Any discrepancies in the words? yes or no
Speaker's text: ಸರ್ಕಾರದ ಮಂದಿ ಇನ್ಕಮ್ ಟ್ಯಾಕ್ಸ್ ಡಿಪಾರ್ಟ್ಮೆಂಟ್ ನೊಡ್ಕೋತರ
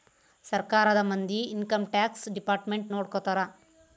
no